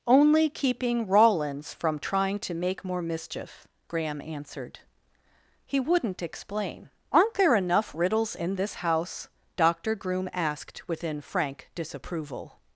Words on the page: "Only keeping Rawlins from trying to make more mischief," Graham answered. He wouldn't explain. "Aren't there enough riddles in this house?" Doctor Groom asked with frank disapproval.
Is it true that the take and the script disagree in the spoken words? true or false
true